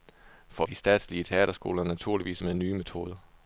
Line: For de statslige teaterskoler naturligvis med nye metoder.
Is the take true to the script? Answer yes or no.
yes